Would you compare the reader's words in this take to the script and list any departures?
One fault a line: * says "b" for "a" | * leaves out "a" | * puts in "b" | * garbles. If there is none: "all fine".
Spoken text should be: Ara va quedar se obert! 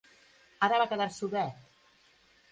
all fine